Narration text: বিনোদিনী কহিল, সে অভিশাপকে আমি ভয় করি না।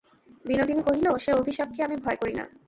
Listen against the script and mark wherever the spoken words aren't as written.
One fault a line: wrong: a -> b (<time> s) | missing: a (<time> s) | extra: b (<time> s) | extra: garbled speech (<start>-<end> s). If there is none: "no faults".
no faults